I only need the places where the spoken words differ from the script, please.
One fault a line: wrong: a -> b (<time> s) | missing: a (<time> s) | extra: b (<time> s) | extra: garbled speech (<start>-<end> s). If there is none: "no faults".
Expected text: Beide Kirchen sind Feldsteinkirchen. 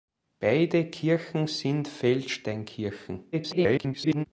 extra: garbled speech (3.3-4.3 s)